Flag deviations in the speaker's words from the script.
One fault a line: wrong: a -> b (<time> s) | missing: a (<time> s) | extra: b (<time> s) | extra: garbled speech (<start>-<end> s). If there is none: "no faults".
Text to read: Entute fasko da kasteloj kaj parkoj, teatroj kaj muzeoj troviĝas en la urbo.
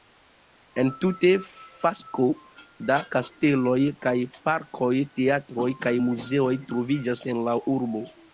no faults